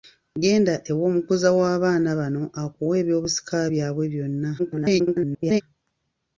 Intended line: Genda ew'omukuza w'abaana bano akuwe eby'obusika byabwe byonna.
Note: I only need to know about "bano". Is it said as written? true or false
true